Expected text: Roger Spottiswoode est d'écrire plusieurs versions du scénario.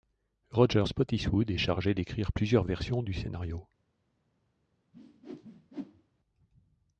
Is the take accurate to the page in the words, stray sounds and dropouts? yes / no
no